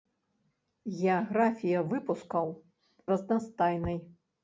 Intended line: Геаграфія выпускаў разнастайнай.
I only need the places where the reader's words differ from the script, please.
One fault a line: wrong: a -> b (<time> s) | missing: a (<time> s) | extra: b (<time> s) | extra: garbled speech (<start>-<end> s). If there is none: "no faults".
no faults